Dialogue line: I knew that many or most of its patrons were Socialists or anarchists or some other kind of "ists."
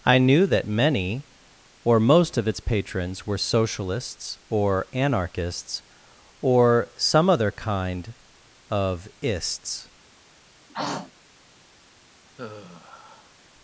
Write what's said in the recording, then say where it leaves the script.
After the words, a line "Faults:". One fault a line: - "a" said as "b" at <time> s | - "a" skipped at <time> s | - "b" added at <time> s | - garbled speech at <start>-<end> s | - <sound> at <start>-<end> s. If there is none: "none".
I knew that many or most of its patrons were Socialists or anarchists or some other kind of "ists."
Faults:
- throat clearing at 10.7-11.1 s
- sigh at 12.4-13.3 s